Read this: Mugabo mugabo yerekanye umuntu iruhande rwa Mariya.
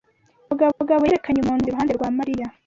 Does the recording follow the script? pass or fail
pass